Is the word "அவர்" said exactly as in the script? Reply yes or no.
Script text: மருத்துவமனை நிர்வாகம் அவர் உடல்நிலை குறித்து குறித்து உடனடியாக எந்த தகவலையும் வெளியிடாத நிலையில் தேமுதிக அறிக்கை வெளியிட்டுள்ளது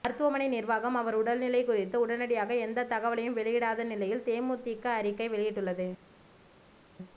yes